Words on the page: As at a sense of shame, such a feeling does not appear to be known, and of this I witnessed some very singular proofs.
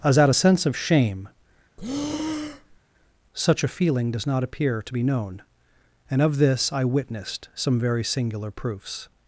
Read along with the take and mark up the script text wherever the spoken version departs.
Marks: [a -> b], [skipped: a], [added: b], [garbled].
As at a sense of shame, such a feeling does not appear to be known, and of this I witnessed some very singular proofs.